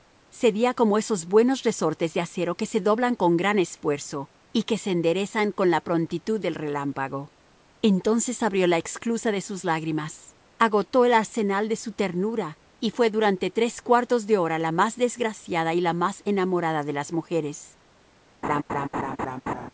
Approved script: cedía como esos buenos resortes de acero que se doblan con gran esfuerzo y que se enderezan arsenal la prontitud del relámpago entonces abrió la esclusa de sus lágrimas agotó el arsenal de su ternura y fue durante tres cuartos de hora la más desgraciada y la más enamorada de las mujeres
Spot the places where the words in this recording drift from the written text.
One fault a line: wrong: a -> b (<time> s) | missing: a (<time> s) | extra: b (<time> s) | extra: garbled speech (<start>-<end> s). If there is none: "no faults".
wrong: arsenal -> con (5.5 s)